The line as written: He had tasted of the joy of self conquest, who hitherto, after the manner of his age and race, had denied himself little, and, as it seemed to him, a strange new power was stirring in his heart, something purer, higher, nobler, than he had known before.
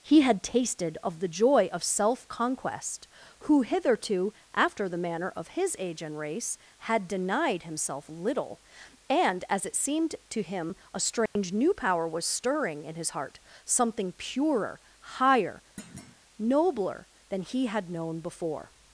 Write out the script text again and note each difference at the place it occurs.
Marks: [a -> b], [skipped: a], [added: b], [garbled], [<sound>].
He had tasted of the joy of self conquest, who hitherto, after the manner of his age and race, had denied himself little, and, as it seemed to him, a strange [dropout] new power was stirring in his heart, something purer, higher, [thud] nobler, than he had known before.